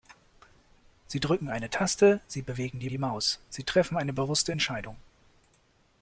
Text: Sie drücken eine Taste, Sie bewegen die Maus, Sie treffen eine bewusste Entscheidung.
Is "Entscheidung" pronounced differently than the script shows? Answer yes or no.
no